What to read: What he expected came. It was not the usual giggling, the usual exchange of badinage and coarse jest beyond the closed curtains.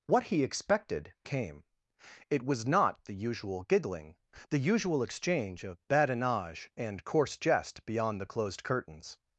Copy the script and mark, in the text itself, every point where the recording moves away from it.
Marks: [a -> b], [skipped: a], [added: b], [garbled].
What he expected came. It was not the usual giggling, the usual exchange of badinage and coarse jest beyond the closed curtains.